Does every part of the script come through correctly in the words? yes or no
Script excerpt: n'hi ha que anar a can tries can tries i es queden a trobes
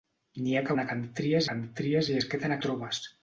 yes